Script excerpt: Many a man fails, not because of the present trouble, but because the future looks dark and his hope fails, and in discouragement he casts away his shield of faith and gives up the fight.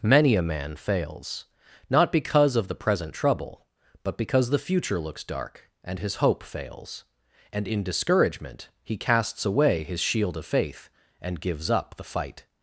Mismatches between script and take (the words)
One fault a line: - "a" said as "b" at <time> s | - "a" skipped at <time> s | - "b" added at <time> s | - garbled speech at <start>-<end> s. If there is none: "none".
none